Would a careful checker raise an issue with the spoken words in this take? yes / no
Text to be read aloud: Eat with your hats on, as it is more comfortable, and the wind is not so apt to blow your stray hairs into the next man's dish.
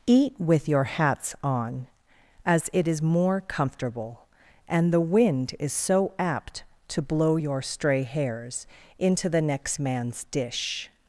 yes